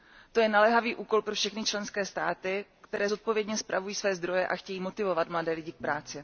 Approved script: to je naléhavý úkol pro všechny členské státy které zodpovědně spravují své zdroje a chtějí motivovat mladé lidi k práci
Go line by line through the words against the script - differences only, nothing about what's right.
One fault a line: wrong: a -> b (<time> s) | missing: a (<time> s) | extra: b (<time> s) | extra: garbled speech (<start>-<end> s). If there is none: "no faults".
no faults